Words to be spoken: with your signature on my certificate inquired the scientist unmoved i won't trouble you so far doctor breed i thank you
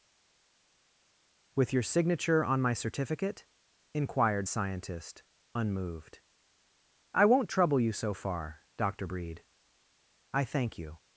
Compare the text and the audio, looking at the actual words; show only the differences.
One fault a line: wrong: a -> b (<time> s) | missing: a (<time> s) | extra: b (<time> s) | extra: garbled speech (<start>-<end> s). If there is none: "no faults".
missing: the (4.5 s)